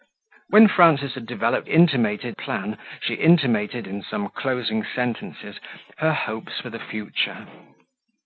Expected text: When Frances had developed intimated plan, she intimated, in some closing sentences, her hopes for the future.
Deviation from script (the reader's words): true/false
false